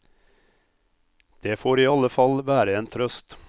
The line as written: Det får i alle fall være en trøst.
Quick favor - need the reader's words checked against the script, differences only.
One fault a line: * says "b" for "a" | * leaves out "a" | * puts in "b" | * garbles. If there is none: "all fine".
all fine